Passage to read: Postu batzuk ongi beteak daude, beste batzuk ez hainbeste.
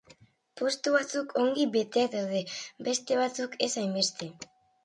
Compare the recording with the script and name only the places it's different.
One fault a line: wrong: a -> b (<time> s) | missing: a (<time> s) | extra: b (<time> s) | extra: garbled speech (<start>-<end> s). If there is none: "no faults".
no faults